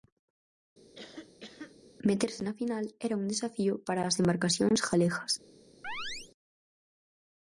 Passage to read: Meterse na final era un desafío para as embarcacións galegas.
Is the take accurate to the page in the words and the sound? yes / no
no